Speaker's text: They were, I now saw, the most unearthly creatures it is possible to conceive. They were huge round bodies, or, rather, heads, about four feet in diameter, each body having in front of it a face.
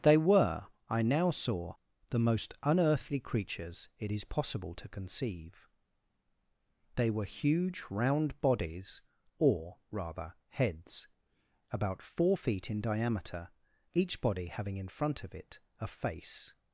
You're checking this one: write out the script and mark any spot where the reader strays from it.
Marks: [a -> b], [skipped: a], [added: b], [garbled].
They were, I now saw, the most unearthly creatures it is possible to conceive. They were huge round bodies, or, rather, heads, about four feet in diameter, each body having in front of it a face.